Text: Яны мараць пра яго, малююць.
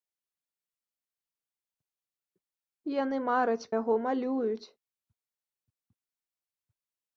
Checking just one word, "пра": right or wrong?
wrong